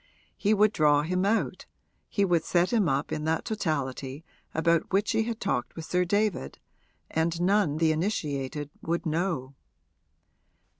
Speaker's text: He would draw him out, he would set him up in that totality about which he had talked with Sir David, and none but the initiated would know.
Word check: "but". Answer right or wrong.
wrong